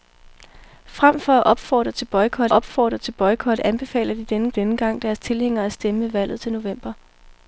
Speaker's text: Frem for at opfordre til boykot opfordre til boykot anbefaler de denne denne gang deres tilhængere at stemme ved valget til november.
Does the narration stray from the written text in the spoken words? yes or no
no